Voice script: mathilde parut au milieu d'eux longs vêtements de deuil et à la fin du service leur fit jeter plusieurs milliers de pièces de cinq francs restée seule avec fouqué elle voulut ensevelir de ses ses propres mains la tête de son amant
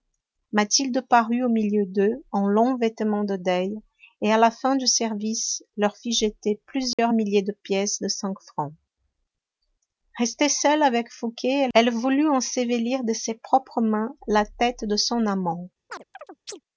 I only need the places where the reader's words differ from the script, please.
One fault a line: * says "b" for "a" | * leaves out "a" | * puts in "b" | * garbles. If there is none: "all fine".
* puts in "en"
* leaves out "ses"